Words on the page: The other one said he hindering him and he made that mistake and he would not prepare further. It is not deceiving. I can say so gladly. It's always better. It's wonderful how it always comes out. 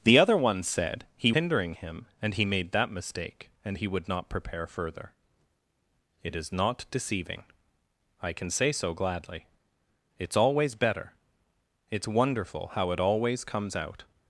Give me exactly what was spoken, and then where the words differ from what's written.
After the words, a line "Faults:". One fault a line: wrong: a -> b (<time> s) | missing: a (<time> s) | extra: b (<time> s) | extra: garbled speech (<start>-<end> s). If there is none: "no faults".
The other one said he hindering him and he made that mistake and he would not prepare further. It is not deceiving. I can say so gladly. It's always better. It's wonderful how it always comes out.
Faults:
no faults